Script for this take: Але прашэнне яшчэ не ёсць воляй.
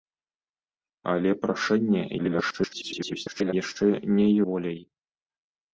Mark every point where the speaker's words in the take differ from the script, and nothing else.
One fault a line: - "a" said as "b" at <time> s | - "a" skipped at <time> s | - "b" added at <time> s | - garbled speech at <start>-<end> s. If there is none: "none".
- garbled speech at 2.2-3.5 s
- "ёсць" skipped at 4.3 s